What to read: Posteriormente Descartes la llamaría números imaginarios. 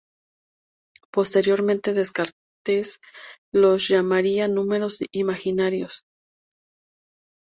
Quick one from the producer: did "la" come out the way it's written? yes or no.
no